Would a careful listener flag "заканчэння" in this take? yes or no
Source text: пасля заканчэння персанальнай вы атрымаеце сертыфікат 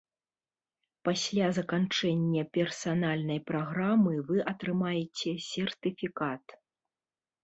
no